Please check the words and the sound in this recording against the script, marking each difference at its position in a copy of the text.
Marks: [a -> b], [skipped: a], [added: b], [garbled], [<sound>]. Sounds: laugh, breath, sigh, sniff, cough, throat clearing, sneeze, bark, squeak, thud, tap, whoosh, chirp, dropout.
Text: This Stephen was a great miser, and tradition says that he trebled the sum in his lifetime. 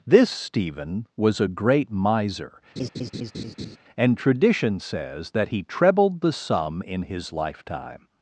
This Stephen was a great miser, [laugh] and tradition says that he trebled the sum in his lifetime.